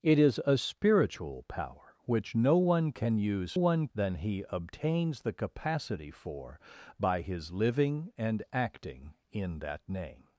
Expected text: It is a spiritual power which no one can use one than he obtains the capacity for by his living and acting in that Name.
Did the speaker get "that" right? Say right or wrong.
right